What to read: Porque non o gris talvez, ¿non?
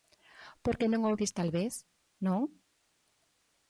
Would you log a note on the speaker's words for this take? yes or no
no